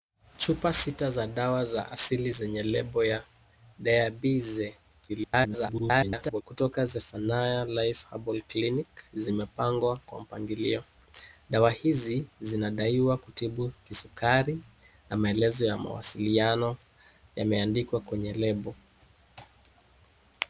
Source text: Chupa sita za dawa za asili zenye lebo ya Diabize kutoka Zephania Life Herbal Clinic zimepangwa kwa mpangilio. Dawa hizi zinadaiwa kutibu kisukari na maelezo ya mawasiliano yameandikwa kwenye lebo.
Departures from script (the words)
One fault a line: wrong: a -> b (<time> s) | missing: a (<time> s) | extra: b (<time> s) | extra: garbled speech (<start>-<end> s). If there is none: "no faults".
extra: garbled speech (5.1-6.4 s)